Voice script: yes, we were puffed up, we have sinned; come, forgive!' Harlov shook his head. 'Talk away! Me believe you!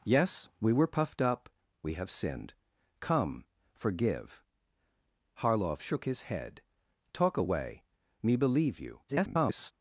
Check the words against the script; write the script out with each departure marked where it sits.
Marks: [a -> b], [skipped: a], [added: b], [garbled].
yes, we were puffed up, we have sinned; come, forgive!' Harlov shook his head. 'Talk away! Me believe you! [garbled]